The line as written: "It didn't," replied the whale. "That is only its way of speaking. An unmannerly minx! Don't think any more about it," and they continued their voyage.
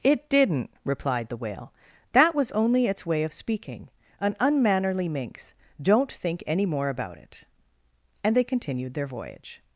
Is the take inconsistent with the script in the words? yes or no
yes